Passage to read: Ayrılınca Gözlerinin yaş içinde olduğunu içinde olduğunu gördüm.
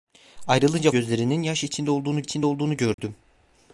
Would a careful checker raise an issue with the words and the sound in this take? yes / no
yes